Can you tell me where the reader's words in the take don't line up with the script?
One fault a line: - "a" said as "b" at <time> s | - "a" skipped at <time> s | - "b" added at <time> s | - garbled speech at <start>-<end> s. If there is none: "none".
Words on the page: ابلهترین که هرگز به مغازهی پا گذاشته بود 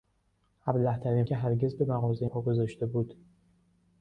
none